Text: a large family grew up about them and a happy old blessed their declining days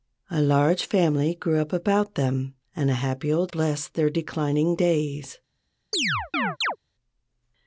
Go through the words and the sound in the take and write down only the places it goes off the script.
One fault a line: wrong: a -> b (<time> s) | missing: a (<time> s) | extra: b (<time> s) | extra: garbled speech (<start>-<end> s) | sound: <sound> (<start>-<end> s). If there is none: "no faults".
sound: chirp (5.9-6.8 s)